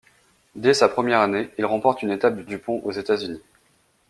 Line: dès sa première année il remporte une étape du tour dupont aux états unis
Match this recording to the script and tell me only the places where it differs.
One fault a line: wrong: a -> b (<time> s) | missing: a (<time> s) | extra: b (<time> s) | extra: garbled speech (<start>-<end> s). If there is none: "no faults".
missing: tour (2.5 s)